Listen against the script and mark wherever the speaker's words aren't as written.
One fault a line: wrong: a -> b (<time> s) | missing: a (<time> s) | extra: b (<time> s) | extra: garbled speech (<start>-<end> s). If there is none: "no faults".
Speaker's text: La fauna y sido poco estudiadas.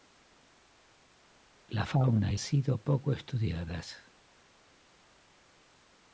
no faults